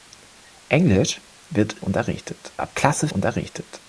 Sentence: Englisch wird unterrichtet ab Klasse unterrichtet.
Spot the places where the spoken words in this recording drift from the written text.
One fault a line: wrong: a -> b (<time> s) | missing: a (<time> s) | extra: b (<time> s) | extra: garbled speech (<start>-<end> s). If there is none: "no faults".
no faults